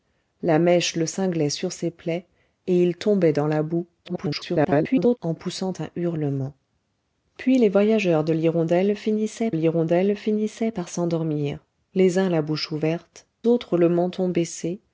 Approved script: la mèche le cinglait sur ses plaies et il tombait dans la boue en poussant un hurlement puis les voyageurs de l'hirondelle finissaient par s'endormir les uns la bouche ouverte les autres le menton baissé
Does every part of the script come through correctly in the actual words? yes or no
no